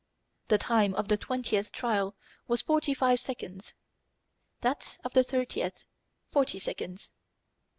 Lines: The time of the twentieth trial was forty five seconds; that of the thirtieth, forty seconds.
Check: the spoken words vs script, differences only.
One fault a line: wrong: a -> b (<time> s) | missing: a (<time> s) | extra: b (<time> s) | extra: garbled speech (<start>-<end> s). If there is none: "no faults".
no faults